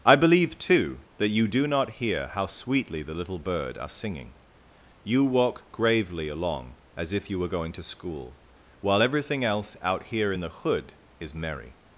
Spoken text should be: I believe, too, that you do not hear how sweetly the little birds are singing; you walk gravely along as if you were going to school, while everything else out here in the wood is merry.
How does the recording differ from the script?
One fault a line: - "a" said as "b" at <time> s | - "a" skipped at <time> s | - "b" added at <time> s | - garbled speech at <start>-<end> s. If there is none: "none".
- "birds" said as "bird" at 3.4 s
- "wood" said as "hood" at 10.5 s